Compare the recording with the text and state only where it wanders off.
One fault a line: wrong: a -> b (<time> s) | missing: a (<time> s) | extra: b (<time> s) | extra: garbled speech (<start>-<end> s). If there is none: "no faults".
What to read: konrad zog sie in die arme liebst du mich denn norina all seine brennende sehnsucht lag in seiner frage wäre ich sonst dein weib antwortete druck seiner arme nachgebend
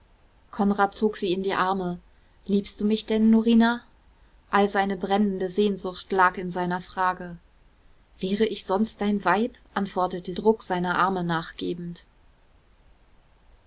no faults